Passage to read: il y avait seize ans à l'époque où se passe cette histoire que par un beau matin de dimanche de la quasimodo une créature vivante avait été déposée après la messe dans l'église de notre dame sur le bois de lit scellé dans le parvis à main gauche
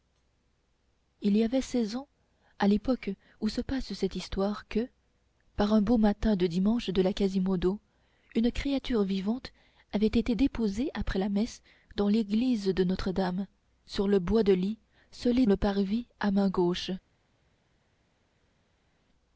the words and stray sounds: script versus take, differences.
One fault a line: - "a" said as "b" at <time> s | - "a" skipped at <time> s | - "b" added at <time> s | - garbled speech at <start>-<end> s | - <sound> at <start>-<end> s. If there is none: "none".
- "dans" skipped at 15.4 s